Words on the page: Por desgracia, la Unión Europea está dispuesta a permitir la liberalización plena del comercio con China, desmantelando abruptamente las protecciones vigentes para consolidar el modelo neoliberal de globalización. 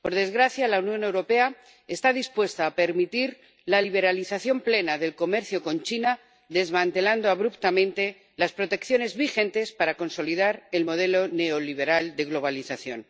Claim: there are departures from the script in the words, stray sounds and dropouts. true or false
false